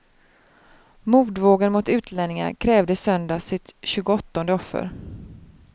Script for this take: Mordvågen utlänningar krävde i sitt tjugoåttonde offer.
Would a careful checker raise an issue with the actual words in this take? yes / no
yes